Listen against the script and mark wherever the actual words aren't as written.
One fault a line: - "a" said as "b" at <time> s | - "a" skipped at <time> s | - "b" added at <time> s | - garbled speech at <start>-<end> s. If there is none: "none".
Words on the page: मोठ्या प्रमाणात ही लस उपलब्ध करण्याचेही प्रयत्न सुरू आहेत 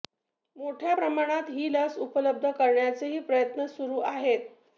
none